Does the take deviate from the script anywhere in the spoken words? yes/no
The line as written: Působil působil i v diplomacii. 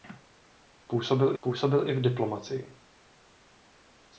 no